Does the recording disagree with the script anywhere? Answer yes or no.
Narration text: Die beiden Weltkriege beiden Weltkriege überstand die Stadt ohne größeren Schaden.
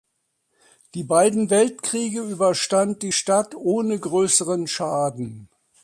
yes